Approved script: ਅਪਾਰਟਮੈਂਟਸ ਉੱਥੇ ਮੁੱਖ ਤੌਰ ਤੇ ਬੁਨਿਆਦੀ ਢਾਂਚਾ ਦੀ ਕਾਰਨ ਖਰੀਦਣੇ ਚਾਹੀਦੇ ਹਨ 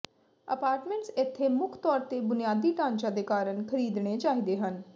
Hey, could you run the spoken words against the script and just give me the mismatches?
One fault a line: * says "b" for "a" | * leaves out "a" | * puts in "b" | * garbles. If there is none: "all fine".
* says "ਇੱਥੇ" for "ਉੱਥੇ"
* says "ਦੇ" for "ਦੀ"